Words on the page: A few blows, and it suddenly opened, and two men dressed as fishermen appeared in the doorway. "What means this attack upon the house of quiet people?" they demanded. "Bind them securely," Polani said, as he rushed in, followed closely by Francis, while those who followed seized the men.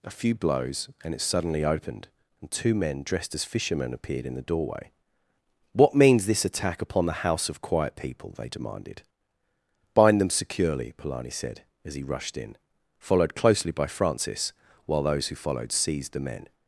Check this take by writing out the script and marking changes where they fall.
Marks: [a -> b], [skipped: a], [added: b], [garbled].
A few blows, and it suddenly opened, and two men dressed as fishermen appeared in the doorway. "What means this attack upon the house of quiet people?" they demanded. "Bind them securely," Polani said, as he rushed in, followed closely by Francis, while those who followed seized the men.